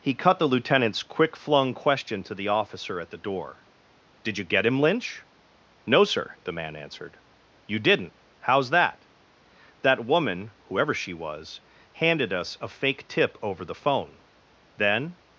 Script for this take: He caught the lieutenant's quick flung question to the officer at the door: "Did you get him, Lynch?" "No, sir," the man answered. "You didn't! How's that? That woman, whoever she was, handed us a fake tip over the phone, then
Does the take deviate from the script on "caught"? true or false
true